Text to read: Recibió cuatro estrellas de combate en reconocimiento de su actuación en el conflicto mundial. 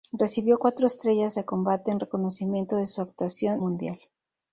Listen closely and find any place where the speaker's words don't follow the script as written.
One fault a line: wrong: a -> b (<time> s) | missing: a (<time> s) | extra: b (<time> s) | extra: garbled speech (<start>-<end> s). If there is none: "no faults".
missing: en el conflicto (3.6 s)